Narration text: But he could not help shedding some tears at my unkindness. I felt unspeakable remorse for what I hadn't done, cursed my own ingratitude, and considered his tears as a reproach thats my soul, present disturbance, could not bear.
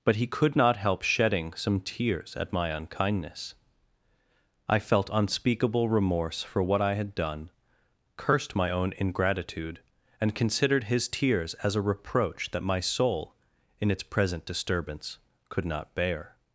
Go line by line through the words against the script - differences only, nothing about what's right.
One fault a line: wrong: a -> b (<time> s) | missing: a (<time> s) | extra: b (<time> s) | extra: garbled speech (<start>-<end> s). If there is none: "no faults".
wrong: hadn't -> had (6.9 s)
wrong: thats -> that (12.5 s)
extra: in its (13.8 s)